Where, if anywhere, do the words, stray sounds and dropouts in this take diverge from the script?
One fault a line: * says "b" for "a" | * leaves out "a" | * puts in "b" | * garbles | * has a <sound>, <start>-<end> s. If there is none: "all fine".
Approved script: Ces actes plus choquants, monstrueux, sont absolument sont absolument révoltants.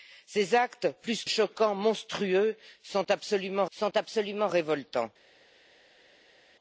all fine